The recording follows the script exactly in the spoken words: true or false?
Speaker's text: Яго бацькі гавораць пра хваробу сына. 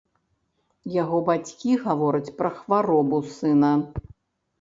true